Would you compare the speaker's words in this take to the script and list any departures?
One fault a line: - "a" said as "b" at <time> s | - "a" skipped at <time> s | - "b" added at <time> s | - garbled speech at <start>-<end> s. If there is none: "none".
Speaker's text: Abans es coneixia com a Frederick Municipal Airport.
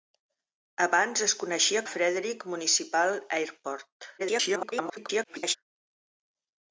- "com" skipped at 1.8 s
- garbled speech at 4.2-5.6 s